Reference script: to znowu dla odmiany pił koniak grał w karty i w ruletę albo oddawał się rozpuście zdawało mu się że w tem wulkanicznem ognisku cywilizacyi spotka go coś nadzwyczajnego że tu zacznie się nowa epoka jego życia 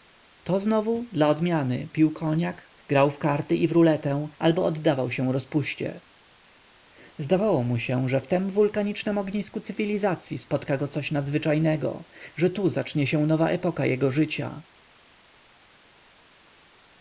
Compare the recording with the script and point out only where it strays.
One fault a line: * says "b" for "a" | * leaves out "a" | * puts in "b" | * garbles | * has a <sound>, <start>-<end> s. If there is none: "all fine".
all fine